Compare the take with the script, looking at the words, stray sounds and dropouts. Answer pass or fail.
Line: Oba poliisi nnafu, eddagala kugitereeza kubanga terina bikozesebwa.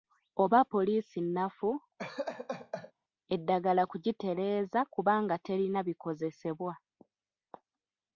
fail